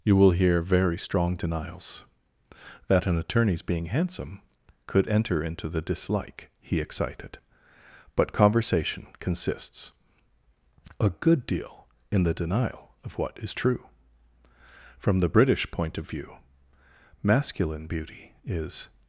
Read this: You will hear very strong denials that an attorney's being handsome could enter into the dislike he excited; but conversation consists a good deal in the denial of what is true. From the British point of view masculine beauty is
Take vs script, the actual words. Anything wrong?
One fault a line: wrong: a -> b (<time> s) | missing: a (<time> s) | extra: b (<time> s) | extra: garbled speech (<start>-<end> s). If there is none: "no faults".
no faults